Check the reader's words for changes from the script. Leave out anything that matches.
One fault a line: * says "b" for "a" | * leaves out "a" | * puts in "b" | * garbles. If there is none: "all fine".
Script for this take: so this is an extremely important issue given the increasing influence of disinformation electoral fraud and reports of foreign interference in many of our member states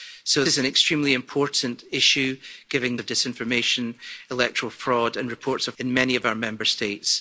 * leaves out "this"
* leaves out "the increasing influence"
* leaves out "foreign interference"